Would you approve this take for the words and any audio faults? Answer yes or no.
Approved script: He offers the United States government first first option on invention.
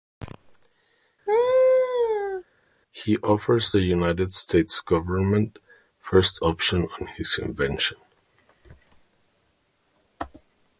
no